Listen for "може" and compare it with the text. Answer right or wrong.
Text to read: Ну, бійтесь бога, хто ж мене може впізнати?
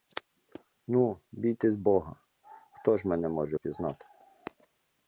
right